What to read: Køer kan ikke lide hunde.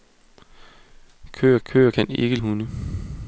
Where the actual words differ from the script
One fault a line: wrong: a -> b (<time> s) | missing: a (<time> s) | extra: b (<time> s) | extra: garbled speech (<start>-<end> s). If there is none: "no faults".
extra: køer (1.6 s)
missing: lide (2.4 s)